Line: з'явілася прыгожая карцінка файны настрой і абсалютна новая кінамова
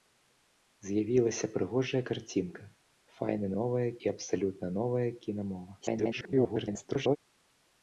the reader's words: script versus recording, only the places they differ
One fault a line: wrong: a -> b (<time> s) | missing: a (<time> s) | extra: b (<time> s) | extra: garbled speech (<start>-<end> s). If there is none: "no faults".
wrong: настрой -> новая (3.6 s)
extra: garbled speech (5.8-7.2 s)